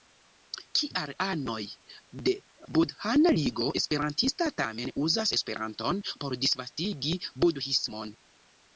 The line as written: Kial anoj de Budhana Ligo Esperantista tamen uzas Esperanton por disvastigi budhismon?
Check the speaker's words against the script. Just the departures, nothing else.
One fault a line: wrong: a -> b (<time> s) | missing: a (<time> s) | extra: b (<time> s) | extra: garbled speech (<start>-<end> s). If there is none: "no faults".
no faults